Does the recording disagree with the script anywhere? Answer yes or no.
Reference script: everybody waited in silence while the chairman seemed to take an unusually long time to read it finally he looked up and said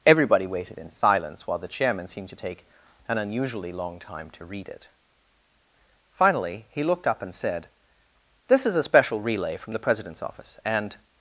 yes